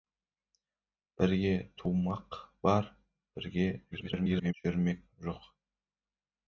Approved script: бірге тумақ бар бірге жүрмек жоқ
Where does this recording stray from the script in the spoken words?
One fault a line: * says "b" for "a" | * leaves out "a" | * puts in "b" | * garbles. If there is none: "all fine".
* garbles